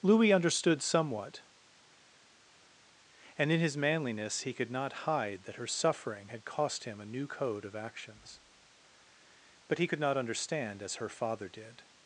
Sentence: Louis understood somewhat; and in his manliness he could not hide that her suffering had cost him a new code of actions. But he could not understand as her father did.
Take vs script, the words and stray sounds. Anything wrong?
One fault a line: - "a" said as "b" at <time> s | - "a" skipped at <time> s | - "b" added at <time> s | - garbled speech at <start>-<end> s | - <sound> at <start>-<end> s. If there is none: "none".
none